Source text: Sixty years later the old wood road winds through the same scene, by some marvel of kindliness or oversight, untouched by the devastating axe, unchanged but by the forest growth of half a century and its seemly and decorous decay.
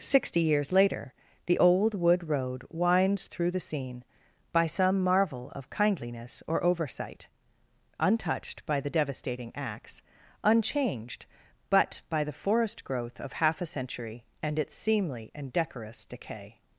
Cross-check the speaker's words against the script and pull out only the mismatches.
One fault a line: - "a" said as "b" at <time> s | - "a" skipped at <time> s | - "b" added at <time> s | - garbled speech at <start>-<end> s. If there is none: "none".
- "same" skipped at 3.6 s